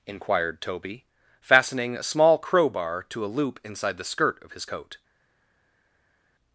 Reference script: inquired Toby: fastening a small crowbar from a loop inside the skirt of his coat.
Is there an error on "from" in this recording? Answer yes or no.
yes